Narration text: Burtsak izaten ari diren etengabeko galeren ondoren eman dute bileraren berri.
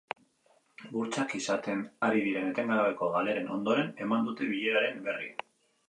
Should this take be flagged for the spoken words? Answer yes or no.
no